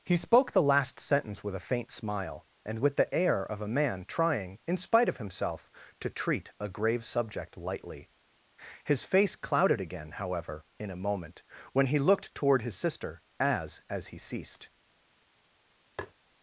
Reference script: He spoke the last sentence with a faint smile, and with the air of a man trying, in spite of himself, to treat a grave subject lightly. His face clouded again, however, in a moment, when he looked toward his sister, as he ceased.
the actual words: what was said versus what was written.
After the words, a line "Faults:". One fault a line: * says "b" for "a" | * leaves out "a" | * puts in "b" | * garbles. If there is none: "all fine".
He spoke the last sentence with a faint smile, and with the air of a man trying, in spite of himself, to treat a grave subject lightly. His face clouded again, however, in a moment, when he looked toward his sister, as as he ceased.
Faults:
* puts in "as"